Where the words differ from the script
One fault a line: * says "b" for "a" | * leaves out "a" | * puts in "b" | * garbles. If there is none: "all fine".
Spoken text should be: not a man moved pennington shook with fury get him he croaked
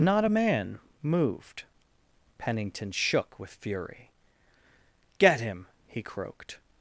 all fine